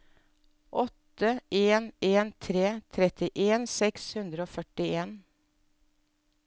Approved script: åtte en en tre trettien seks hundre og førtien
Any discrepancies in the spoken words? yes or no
no